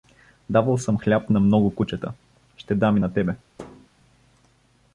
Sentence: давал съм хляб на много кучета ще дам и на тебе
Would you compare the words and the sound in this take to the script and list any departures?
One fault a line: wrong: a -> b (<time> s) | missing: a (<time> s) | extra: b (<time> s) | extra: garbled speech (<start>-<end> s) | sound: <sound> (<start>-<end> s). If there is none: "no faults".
sound: thud (3.6-3.9 s)